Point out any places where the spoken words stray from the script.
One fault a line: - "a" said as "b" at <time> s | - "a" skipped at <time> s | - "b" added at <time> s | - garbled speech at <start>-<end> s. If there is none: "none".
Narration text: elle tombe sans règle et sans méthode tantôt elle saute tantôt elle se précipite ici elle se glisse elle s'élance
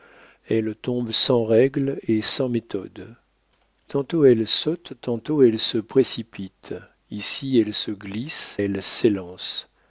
none